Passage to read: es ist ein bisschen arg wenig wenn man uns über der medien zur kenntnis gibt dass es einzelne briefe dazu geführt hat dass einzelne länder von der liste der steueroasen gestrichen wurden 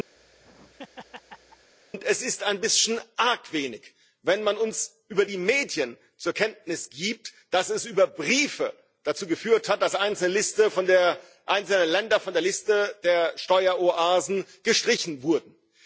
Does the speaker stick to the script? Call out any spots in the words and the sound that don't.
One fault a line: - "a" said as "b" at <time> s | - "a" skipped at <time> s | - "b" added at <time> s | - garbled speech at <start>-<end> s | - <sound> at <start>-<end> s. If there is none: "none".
- laugh at 0.2-1.7 s
- "der" said as "die" at 5.2 s
- "einzelne" said as "über" at 7.8 s